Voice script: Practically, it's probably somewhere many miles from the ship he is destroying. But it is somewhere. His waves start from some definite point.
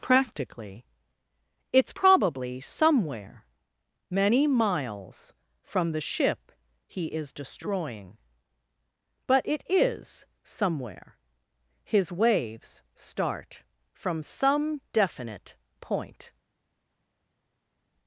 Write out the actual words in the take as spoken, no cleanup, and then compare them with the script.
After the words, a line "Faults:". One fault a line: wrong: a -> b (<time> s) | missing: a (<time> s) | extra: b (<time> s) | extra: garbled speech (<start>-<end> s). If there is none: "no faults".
Practically, it's probably somewhere many miles from the ship he is destroying. But it is somewhere. His waves start from some definite point.
Faults:
no faults